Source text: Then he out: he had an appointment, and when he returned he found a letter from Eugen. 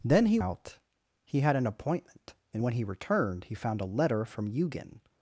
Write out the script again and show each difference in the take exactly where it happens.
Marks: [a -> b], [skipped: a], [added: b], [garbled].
Then he out: he had an appointment, and when he returned he found a letter from Eugen.